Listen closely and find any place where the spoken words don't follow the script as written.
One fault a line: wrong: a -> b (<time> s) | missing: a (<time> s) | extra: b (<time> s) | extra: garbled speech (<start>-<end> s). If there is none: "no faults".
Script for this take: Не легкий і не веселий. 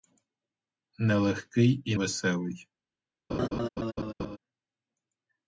missing: не (1.9 s)